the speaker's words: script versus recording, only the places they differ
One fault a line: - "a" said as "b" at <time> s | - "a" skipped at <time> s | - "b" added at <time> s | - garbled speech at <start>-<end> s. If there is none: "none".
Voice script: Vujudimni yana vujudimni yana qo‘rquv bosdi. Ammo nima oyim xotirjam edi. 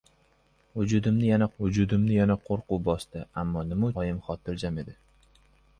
none